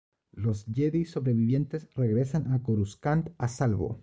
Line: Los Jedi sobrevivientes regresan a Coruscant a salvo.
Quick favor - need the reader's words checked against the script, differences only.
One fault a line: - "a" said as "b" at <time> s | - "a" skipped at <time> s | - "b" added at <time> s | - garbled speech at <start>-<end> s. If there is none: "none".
none